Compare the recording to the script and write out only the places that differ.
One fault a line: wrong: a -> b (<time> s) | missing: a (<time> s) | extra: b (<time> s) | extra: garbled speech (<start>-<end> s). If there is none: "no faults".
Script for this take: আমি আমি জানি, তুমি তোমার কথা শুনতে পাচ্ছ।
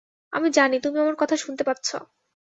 missing: আমি (0.5 s)
wrong: তোমার -> আমার (1.0 s)